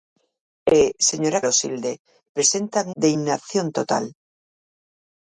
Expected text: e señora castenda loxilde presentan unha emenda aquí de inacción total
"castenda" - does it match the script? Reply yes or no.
no